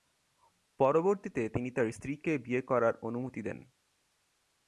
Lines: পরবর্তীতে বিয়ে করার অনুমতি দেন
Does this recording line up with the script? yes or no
no